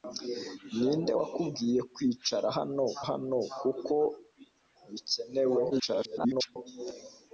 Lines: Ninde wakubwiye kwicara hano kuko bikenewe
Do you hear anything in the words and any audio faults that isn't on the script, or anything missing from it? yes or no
yes